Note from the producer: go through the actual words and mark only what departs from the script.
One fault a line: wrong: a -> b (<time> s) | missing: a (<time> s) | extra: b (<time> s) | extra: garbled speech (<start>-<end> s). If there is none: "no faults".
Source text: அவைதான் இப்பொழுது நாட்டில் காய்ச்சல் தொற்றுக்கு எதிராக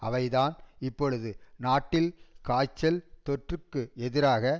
no faults